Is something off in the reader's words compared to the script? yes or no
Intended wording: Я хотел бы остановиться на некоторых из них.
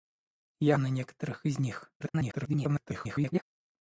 yes